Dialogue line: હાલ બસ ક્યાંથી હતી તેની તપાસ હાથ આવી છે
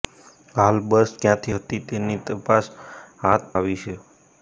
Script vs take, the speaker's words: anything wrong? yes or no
no